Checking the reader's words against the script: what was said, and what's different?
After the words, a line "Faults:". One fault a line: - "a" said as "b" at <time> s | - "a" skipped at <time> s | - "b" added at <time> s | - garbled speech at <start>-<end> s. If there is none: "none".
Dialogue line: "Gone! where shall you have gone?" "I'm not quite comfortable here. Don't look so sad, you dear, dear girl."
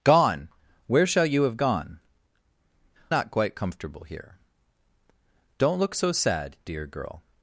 "Gone! where shall you have gone?" "Not quite comfortable here. Don't look so sad, dear girl."
Faults:
- "I'm" skipped at 2.0 s
- "you dear" skipped at 6.6 s